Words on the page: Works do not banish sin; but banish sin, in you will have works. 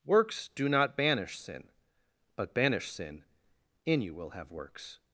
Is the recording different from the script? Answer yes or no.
no